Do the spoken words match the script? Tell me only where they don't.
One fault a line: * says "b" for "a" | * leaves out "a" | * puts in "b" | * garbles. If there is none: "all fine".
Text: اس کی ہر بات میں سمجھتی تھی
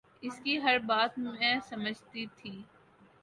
all fine